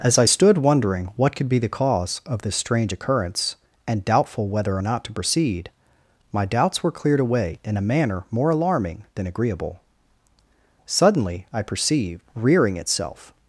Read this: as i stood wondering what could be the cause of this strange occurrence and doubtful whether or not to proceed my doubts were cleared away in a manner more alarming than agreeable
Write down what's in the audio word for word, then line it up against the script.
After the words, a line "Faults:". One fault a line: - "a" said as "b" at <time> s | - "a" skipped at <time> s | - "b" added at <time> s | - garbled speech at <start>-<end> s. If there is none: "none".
as i stood wondering what could be the cause of this strange occurrence and doubtful whether or not to proceed my doubts were cleared away in a manner more alarming than agreeable suddenly i perceived rearing itself
Faults:
- "suddenly i perceived rearing itself" added at 10.8 s